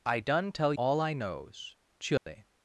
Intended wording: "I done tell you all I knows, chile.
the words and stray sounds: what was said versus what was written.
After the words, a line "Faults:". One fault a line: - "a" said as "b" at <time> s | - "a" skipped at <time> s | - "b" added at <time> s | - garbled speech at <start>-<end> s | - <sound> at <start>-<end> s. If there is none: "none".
"I done tell all I knows, chile.
Faults:
- "you" skipped at 0.7 s
- dropout at 2.2-2.3 s